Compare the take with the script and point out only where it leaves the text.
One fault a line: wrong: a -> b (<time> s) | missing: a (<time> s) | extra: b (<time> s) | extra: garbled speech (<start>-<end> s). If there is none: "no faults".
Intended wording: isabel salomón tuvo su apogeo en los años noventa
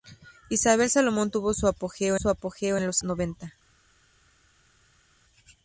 extra: su apogeo (2.1 s)
missing: años (3.0 s)